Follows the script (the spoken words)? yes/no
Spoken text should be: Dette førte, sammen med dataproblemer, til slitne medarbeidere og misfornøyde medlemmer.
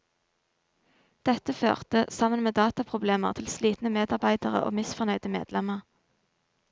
yes